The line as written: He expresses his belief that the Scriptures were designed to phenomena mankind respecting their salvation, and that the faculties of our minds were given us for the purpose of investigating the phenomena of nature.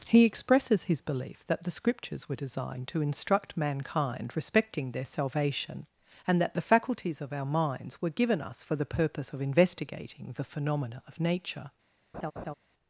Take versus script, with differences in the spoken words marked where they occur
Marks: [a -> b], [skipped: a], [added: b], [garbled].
He expresses his belief that the Scriptures were designed to [phenomena -> instruct] mankind respecting their salvation, and that the faculties of our minds were given us for the purpose of investigating the phenomena of nature.